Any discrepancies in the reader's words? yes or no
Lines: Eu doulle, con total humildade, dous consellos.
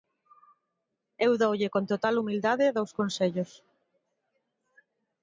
no